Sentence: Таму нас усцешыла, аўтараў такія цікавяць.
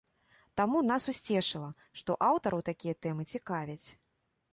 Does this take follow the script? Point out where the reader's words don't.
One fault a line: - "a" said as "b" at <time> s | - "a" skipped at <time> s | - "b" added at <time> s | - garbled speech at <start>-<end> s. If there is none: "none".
- "што" added at 2.0 s
- "тэмы" added at 3.1 s